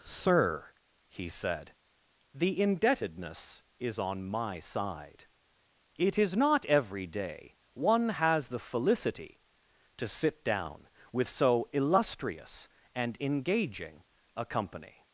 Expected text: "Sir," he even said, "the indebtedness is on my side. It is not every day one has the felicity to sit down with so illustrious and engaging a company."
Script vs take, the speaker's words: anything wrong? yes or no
yes